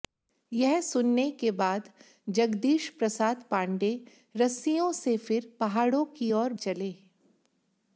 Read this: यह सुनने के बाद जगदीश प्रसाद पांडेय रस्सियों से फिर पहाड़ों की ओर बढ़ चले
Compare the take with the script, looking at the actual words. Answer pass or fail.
fail